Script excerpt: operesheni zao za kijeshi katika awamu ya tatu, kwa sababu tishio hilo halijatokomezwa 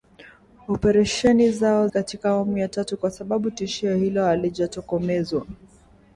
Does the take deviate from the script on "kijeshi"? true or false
true